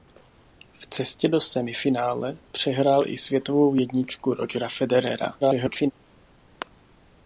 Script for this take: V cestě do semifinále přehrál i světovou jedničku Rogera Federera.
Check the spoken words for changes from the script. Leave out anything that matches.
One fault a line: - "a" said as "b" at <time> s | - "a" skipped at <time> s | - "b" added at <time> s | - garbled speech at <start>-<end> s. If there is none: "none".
- garbled speech at 5.4-5.9 s